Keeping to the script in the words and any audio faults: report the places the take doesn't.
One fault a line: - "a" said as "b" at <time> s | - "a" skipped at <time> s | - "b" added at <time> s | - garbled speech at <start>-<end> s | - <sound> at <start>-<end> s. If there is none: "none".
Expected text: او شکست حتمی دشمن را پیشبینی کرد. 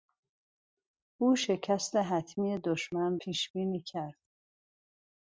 - "را" skipped at 3.2 s